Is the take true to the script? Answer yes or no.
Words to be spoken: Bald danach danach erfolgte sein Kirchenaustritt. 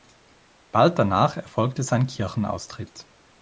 no